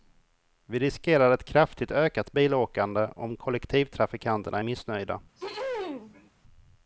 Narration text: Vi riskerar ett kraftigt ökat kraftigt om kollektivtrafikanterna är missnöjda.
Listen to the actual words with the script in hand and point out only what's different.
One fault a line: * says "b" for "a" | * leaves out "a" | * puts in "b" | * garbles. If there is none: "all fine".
* says "bilåkande" for "kraftigt"